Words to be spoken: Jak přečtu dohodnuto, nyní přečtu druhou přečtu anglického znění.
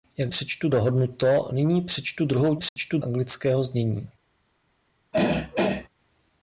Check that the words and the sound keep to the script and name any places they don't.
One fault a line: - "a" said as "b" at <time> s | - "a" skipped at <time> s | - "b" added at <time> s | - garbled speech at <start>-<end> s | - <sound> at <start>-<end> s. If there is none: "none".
- dropout at 2.7-2.8 s
- throat clearing at 5.1-5.9 s